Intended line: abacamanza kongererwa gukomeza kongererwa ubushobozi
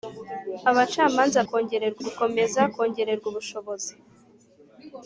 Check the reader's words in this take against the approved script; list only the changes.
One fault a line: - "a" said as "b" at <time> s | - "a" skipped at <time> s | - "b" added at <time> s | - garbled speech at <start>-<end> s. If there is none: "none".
none